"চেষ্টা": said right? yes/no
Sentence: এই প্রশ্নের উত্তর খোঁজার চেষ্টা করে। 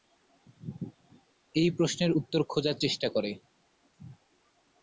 yes